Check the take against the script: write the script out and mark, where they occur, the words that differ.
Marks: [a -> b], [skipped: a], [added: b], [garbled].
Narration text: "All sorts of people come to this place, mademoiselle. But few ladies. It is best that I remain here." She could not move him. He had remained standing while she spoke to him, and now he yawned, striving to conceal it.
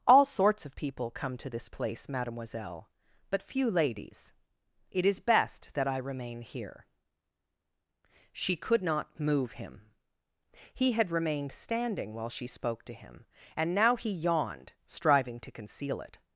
"All sorts of people come to this place, mademoiselle. But few ladies. It is best that I remain here." She could not move him. He had remained standing while she spoke to him, and now he yawned, striving to conceal it.